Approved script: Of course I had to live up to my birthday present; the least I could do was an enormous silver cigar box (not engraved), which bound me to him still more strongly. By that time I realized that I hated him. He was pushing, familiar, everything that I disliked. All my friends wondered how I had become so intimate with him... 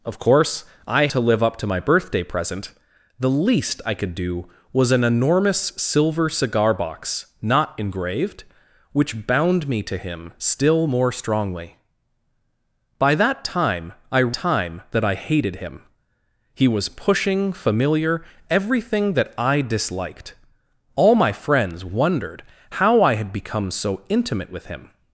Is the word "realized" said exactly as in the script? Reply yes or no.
no